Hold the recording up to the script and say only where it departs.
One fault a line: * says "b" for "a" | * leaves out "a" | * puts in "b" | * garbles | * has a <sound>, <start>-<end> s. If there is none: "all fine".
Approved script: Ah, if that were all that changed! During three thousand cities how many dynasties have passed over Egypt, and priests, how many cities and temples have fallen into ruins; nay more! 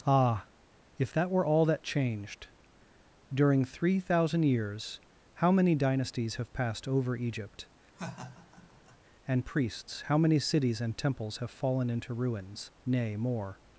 * says "years" for "cities"
* has a laugh, 8.0-9.0 s